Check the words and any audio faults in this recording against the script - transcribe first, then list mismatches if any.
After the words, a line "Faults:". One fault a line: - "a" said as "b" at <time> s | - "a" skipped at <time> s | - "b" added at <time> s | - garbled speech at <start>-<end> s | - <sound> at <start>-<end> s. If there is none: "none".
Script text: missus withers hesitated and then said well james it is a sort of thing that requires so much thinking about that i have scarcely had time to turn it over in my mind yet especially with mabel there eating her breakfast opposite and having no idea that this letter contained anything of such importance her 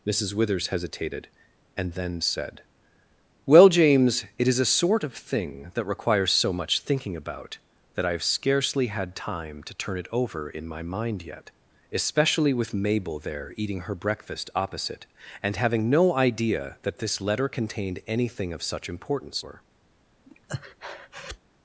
missus withers hesitated and then said well james it is a sort of thing that requires so much thinking about that i have scarcely had time to turn it over in my mind yet especially with mabel there eating her breakfast opposite and having no idea that this letter contained anything of such importance her
Faults:
- breath at 20.3-21.4 s